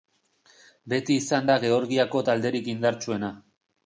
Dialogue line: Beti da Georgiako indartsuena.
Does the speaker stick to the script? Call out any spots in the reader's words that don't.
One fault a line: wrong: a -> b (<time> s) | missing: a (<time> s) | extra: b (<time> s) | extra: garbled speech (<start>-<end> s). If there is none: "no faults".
extra: izan (1.2 s)
extra: talderik (2.3 s)